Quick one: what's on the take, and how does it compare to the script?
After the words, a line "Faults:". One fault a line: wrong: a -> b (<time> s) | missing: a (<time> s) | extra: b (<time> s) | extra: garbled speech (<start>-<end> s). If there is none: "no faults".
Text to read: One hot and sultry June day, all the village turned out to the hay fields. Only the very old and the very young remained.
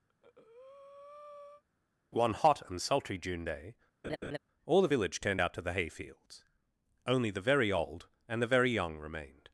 One hot and sultry June day, all the village turned out to the hay fields. Only the very old and the very young remained.
Faults:
no faults